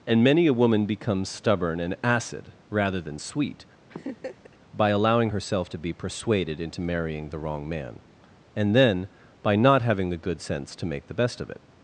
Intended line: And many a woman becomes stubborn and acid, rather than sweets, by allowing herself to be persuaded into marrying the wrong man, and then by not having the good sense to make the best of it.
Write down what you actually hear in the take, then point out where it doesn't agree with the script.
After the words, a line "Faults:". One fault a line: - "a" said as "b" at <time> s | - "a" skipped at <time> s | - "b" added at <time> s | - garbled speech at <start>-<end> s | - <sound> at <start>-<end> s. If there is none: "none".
And many a woman becomes stubborn and acid, rather than sweet, by allowing herself to be persuaded into marrying the wrong man, and then by not having the good sense to make the best of it.
Faults:
- "sweets" said as "sweet" at 3.2 s
- laugh at 3.9-4.6 s